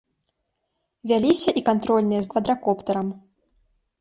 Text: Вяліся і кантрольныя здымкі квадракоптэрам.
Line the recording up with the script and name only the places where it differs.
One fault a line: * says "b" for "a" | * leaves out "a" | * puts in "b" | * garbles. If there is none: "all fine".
* leaves out "здымкі"